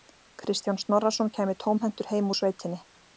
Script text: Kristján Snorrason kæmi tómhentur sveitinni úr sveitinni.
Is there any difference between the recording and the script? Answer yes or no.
yes